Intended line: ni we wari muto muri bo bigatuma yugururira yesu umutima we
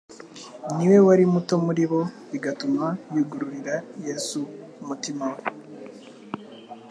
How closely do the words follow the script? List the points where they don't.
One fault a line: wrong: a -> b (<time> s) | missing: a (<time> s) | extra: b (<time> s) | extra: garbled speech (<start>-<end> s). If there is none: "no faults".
no faults